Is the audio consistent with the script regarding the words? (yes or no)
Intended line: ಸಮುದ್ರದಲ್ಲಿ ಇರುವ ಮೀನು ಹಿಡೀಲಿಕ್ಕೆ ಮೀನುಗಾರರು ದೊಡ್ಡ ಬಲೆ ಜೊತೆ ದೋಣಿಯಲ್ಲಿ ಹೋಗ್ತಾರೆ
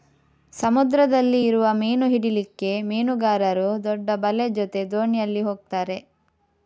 yes